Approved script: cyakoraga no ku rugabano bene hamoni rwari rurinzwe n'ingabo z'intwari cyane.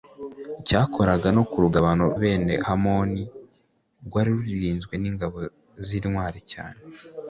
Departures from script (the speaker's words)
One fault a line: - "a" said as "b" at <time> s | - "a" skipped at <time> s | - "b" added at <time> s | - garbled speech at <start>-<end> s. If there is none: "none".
none